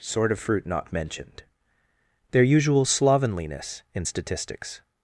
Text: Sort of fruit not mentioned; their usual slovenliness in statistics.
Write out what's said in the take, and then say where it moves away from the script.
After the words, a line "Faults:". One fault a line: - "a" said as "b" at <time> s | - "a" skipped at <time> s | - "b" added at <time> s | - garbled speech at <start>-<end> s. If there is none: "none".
Sort of fruit not mentioned; their usual slovenliness in statistics.
Faults:
none